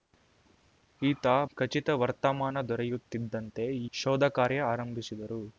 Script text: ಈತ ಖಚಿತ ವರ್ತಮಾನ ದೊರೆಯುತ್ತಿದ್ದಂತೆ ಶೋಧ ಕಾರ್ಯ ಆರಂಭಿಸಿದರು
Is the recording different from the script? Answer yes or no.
no